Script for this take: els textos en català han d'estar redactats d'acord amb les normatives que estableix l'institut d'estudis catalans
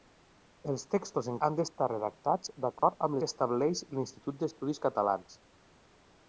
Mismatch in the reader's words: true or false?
true